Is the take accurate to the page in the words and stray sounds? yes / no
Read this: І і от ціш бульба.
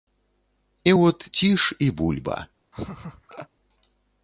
no